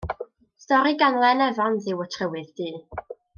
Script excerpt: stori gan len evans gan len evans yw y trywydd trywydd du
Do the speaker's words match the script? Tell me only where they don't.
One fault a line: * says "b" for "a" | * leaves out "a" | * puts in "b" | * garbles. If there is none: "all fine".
* leaves out "gan len evans"
* leaves out "trywydd"